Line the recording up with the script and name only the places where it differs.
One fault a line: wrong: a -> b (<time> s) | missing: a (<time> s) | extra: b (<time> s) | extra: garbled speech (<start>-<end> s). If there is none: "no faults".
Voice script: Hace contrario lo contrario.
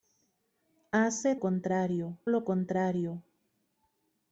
no faults